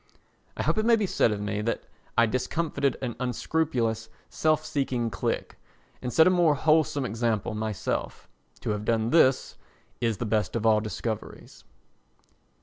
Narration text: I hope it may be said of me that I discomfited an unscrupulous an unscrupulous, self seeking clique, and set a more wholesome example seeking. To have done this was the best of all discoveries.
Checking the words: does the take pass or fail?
fail